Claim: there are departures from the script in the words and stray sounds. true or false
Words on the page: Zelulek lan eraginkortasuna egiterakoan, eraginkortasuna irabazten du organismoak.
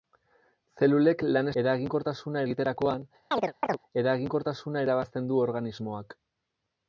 true